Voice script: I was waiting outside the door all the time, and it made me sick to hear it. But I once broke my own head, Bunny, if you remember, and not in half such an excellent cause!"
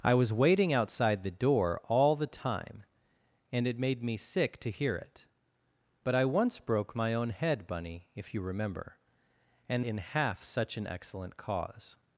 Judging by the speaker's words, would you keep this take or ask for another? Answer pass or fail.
fail